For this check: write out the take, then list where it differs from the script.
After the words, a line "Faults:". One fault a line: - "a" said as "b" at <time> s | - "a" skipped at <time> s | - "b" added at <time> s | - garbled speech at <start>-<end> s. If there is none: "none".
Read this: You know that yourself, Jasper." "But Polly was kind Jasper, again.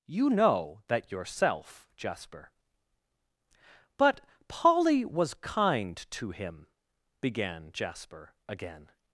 You know that yourself, Jasper." "But Polly was kind to him," began Jasper, again.
Faults:
- "to him began" added at 6.1 s